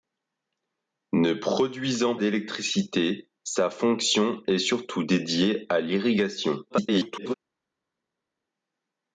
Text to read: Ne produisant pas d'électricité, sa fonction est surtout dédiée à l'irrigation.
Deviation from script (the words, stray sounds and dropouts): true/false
true